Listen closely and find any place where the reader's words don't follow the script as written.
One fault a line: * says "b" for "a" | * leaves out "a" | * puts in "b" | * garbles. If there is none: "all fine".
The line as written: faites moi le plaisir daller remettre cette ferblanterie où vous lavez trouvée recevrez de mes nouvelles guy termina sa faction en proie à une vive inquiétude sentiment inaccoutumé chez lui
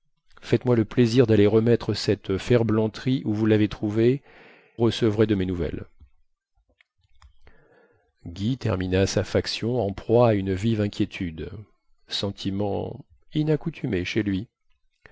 all fine